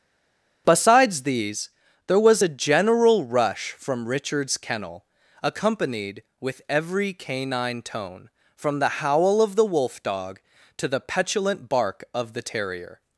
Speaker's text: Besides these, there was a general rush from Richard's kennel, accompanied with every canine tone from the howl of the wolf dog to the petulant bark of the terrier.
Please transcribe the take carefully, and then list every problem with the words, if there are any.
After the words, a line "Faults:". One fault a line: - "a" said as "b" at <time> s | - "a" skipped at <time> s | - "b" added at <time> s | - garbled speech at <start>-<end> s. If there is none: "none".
Besides these, there was a general rush from Richard's kennel, accompanied with every canine tone from the howl of the wolf dog to the petulant bark of the terrier.
Faults:
none